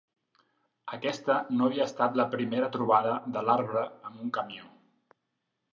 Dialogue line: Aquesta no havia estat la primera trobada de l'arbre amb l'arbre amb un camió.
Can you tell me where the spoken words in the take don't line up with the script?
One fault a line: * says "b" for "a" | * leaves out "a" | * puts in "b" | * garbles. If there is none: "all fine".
* leaves out "l'arbre amb"